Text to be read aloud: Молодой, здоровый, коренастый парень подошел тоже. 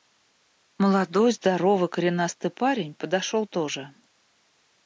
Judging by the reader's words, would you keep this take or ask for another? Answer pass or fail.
pass